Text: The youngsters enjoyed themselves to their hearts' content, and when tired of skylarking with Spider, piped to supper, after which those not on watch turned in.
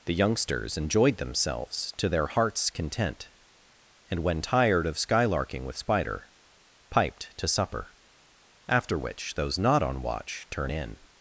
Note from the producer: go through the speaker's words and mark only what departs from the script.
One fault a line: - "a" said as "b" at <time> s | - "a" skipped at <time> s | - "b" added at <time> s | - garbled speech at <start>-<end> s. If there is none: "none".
- "turned" said as "turn" at 10.5 s